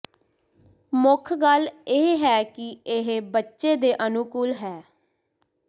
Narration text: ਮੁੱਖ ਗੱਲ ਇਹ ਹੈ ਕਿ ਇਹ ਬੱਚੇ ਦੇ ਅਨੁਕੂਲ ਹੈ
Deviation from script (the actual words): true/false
false